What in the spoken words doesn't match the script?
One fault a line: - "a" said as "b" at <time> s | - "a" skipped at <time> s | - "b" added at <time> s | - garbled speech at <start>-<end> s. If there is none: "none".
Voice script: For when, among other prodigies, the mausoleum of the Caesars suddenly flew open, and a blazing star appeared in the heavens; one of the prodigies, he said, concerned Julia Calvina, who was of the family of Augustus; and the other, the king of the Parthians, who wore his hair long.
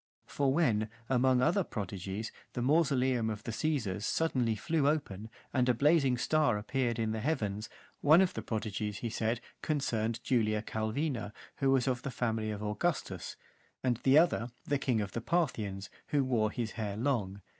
none